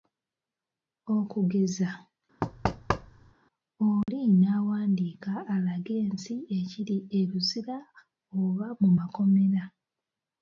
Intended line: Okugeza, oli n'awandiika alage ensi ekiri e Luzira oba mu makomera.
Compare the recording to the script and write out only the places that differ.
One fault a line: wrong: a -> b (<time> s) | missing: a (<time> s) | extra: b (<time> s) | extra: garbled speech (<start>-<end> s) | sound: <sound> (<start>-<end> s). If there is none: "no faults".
sound: thud (2.4-3.3 s)
sound: dropout (4.0-4.1 s)